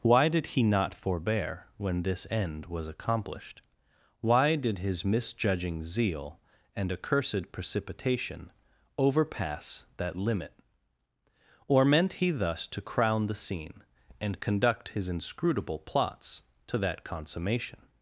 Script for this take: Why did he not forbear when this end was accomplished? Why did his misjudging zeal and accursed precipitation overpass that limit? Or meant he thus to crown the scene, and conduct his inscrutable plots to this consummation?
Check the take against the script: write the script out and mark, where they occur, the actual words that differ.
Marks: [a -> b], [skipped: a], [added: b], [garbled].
Why did he not forbear when this end was accomplished? Why did his misjudging zeal and accursed precipitation overpass that limit? Or meant he thus to crown the scene, and conduct his inscrutable plots to [this -> that] consummation?